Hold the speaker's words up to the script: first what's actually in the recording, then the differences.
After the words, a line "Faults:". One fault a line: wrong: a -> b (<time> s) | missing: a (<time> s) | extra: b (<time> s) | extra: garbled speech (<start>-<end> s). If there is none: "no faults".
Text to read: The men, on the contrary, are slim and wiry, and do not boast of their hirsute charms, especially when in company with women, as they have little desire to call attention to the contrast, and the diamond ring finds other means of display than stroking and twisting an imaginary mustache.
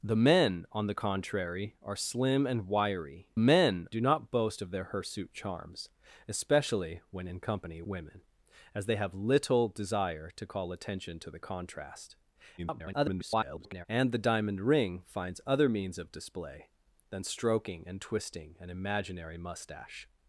The men, on the contrary, are slim and wiry, men do not boast of their hirsute charms, especially when in company women, as they have little desire to call attention to the contrast, [garbled] and the diamond ring finds other means of display than stroking and twisting an imaginary mustache.
Faults:
wrong: and -> men (3.4 s)
missing: with (7.8 s)
extra: garbled speech (12.6-13.9 s)